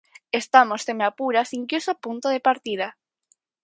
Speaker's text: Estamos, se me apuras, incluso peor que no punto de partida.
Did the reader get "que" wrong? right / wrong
wrong